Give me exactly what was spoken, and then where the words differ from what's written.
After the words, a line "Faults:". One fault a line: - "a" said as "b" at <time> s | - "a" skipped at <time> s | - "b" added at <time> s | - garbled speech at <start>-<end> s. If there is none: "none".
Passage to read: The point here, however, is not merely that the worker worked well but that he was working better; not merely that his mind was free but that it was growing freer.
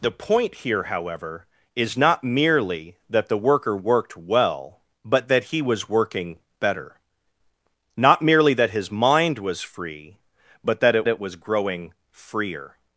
The point here, however, is not merely that the worker worked well but that he was working better; not merely that his mind was free but that it it was growing freer.
Faults:
- "it" added at 11.1 s